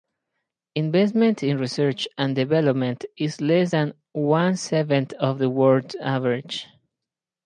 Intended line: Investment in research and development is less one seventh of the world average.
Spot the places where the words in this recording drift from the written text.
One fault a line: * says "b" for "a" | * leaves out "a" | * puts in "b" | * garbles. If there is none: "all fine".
* puts in "than"